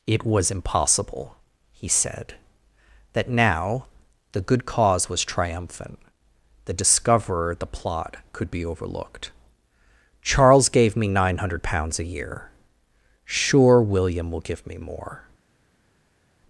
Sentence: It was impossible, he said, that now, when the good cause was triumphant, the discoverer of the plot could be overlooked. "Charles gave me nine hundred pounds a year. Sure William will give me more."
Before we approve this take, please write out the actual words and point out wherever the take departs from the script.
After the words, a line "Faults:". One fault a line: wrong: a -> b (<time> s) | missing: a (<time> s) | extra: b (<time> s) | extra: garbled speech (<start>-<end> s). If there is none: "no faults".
It was impossible, he said, that now, the good cause was triumphant, the discoverer the plot could be overlooked. "Charles gave me nine hundred pounds a year. Sure William will give me more."
Faults:
missing: when (3.9 s)
missing: of (7.5 s)